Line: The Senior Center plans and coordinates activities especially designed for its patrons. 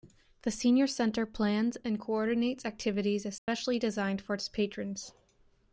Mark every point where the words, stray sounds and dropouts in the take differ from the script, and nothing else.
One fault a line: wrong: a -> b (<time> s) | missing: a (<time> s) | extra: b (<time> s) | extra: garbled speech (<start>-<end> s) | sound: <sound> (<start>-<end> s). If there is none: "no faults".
sound: dropout (3.4-3.5 s)